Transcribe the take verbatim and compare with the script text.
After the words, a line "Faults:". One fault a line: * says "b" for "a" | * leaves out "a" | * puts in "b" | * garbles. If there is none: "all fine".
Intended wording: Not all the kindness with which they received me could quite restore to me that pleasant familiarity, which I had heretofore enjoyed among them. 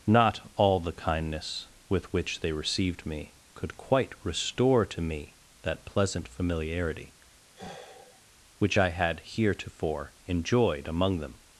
Not all the kindness with which they received me could quite restore to me that pleasant familiarity, which I had heretofore enjoyed among them.
Faults:
all fine